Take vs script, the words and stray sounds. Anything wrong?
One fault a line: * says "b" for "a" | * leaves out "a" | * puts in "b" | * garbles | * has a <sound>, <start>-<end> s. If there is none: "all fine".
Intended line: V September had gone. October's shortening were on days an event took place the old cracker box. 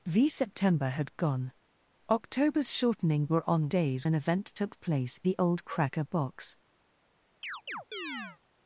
* has a chirp, 7.4-8.4 s